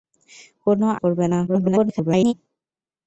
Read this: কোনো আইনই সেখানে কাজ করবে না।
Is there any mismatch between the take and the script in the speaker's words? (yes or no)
yes